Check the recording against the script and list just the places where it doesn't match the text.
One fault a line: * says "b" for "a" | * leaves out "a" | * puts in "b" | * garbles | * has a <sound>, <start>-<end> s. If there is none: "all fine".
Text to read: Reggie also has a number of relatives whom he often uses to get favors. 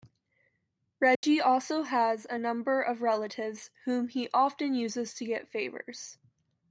* has a dropout, 1.2-1.2 s